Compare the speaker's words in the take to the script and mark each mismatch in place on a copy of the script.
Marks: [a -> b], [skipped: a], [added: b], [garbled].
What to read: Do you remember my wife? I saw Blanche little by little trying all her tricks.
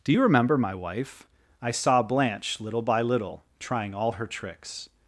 Do you remember my wife? I saw Blanche little by little trying all her tricks.